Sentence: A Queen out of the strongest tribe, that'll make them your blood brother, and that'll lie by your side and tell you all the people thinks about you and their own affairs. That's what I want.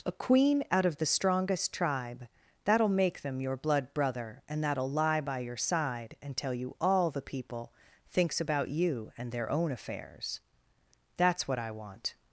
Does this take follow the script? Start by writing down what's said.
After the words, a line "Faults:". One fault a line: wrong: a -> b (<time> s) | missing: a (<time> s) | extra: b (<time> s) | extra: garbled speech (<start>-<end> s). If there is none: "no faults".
A Queen out of the strongest tribe, that'll make them your blood brother, and that'll lie by your side and tell you all the people thinks about you and their own affairs. That's what I want.
Faults:
no faults